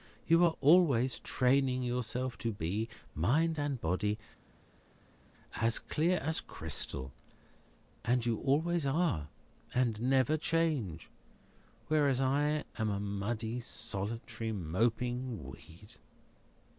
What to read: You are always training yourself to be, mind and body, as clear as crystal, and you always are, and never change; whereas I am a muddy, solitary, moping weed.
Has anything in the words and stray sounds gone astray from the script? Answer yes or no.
no